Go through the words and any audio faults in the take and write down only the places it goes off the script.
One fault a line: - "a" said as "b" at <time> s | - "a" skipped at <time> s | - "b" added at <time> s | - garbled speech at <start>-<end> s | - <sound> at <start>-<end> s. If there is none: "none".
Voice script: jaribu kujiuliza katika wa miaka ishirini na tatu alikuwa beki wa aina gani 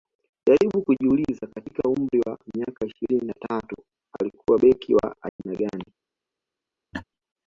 - "umri" added at 1.9 s
- dropout at 5.3-5.4 s
- laugh at 6.9-7.0 s